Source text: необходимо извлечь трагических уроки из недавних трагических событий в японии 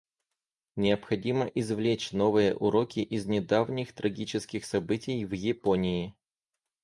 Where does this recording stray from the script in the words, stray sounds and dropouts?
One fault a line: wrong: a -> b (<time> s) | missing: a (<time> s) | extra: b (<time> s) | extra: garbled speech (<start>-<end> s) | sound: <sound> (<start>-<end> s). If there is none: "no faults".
wrong: трагических -> новые (2.1 s)